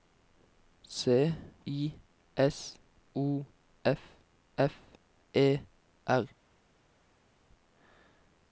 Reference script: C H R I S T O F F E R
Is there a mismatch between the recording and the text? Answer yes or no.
yes